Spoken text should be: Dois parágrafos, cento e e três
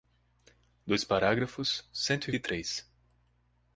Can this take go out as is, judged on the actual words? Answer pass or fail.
pass